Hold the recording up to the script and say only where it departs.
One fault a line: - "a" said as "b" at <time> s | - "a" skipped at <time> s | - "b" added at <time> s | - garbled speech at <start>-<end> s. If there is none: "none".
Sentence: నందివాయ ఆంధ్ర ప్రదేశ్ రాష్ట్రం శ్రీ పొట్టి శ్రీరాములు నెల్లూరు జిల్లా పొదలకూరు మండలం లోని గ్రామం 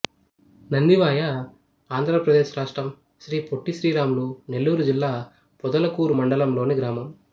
none